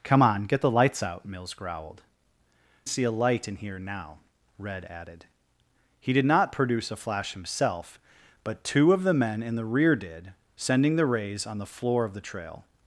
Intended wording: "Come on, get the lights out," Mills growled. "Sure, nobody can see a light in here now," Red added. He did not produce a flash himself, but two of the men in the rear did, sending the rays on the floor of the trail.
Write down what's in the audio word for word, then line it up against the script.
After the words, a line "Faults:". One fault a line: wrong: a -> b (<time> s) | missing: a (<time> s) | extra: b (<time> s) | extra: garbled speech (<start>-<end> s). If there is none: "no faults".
"Come on, get the lights out," Mills growled. "See a light in here now," Red added. He did not produce a flash himself, but two of the men in the rear did, sending the rays on the floor of the trail.
Faults:
missing: Sure nobody can (2.0 s)